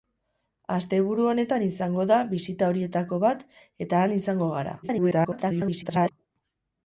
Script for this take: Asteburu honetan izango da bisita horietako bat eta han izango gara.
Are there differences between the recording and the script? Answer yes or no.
yes